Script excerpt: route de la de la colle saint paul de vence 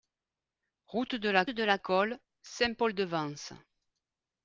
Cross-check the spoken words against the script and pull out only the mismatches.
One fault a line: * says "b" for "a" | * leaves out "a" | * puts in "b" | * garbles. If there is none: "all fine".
all fine